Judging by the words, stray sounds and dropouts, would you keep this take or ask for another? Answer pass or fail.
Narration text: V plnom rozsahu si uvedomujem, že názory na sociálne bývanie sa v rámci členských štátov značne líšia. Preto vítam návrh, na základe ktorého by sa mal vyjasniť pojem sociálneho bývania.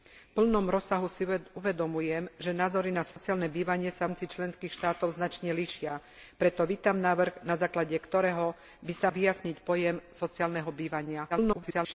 fail